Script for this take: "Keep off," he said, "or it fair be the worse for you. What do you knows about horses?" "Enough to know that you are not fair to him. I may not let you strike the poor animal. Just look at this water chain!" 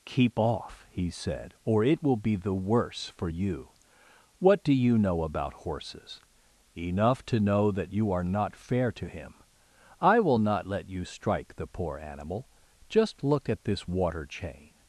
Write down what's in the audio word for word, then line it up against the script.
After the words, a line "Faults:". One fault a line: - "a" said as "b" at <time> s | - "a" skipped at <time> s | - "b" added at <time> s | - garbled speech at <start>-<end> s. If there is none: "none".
"Keep off," he said, "or it will be the worse for you. What do you know about horses?" "Enough to know that you are not fair to him. I will not let you strike the poor animal. Just look at this water chain!"
Faults:
- "fair" said as "will" at 2.0 s
- "knows" said as "know" at 5.0 s
- "may" said as "will" at 10.2 s